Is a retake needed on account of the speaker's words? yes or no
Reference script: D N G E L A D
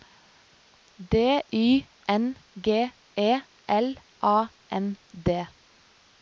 yes